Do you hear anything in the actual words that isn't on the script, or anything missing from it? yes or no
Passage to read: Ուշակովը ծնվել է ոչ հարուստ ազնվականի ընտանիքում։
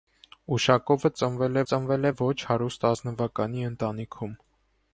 yes